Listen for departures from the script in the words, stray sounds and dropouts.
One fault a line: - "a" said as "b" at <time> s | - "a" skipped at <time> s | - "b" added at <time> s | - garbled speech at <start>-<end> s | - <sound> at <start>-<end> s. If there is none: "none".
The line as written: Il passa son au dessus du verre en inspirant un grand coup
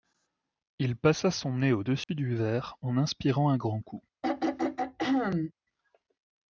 - "nez" added at 1.6 s
- dropout at 2.0-2.1 s
- throat clearing at 4.2-5.5 s